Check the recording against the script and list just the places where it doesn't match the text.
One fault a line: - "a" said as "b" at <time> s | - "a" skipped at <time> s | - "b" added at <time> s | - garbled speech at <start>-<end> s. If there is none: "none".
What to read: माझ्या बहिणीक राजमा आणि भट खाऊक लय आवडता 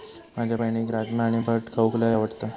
none